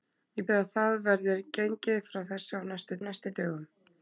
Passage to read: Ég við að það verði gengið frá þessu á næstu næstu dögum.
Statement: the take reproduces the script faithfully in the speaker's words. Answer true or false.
true